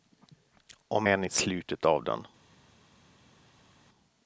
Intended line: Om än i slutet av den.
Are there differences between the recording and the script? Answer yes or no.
no